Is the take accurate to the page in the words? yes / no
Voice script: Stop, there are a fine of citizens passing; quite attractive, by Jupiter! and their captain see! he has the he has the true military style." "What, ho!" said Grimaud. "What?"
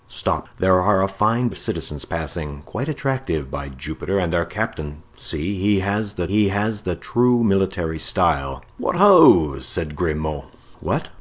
yes